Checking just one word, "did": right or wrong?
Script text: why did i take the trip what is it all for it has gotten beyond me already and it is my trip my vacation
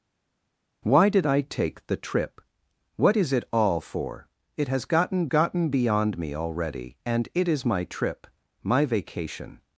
right